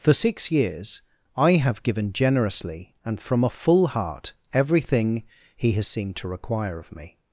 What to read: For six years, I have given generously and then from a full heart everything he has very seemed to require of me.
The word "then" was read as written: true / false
false